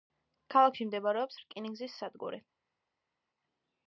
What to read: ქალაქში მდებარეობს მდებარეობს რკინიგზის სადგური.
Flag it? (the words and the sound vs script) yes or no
yes